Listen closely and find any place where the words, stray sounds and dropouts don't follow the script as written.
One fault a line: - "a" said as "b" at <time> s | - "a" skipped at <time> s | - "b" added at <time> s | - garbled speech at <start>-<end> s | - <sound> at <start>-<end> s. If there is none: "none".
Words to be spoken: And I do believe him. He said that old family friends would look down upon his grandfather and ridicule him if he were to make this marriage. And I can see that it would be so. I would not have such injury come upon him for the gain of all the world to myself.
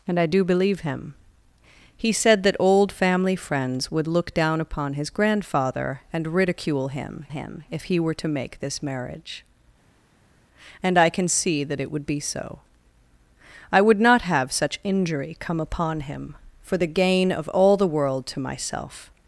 - "him" added at 7.3 s